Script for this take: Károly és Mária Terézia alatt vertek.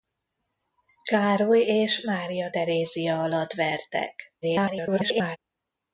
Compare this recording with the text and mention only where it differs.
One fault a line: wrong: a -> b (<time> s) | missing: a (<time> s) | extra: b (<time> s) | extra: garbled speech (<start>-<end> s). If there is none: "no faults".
extra: garbled speech (4.4-5.4 s)